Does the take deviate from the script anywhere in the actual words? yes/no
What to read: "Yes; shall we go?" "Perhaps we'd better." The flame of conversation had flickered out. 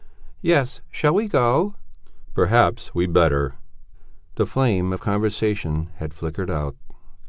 no